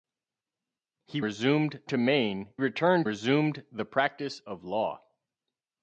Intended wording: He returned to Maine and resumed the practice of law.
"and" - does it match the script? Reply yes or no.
no